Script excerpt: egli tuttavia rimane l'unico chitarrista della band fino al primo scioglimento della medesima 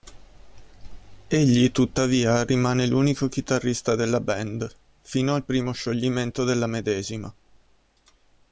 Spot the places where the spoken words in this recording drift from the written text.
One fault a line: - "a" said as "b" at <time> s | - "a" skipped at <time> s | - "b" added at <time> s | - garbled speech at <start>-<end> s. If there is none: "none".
none